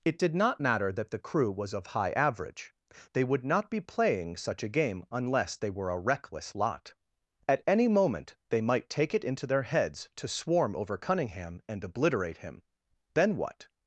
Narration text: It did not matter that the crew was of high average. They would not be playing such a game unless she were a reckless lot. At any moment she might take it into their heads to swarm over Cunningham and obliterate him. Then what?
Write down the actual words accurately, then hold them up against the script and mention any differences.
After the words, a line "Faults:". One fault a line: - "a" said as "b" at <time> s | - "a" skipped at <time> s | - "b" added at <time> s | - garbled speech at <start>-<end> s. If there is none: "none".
It did not matter that the crew was of high average. They would not be playing such a game unless they were a reckless lot. At any moment they might take it into their heads to swarm over Cunningham and obliterate him. Then what?
Faults:
- "she" said as "they" at 5.6 s
- "she" said as "they" at 8.5 s